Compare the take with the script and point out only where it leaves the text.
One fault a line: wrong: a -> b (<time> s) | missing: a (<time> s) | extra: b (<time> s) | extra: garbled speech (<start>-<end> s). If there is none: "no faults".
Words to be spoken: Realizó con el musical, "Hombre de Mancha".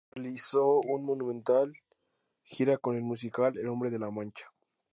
extra: una monumental gira (0.8 s)
extra: El (3.6 s)
extra: La (4.0 s)